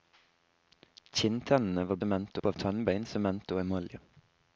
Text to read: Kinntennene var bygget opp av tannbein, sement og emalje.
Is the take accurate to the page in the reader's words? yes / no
no